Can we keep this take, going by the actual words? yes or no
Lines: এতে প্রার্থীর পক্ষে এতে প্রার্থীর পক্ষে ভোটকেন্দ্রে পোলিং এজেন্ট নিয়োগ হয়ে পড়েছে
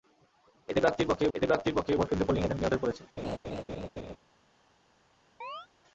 yes